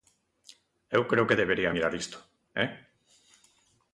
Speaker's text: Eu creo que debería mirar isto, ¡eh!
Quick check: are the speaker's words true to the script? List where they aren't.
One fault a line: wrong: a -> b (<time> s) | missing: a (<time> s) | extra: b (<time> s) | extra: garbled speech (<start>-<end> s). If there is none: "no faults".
no faults